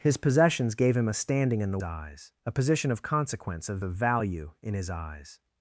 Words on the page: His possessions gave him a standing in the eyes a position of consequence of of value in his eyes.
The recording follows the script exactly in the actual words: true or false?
true